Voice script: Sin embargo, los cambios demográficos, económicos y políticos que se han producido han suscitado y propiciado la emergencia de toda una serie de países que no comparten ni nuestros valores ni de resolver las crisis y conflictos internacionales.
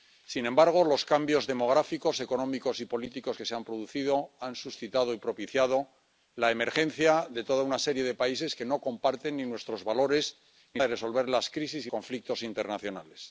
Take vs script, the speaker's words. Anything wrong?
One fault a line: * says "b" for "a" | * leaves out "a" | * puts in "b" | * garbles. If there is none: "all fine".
all fine